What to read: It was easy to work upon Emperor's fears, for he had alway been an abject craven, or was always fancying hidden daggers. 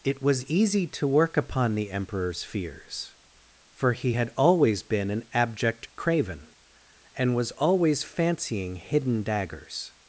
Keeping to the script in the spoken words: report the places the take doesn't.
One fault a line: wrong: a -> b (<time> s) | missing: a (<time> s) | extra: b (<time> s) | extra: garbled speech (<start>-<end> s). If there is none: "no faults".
extra: the (1.8 s)
wrong: alway -> always (4.4 s)
wrong: or -> and (7.2 s)